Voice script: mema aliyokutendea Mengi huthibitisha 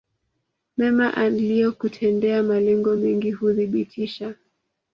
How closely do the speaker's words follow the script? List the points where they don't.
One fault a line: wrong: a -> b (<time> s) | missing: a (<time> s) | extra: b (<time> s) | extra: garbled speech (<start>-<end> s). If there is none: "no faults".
extra: Malengo (2.4 s)